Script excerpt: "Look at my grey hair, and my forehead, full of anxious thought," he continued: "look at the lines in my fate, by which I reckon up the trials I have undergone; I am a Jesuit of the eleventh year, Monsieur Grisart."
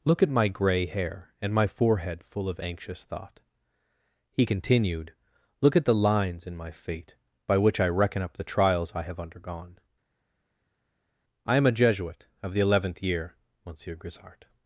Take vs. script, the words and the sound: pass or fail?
pass